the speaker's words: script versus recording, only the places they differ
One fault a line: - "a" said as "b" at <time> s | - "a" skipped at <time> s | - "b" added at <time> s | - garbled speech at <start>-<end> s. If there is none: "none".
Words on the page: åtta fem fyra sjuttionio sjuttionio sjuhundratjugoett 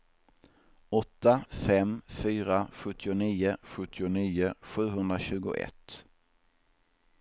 none